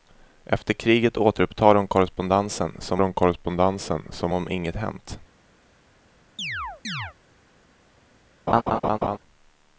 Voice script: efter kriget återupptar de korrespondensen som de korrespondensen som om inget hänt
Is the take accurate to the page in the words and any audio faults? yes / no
no